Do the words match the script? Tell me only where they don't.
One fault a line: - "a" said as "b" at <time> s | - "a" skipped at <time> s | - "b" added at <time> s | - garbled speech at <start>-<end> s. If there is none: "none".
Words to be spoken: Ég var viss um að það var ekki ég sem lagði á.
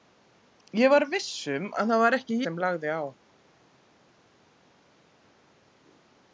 - "ég" skipped at 2.4 s